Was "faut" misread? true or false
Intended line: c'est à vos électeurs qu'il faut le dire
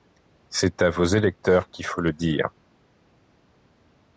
false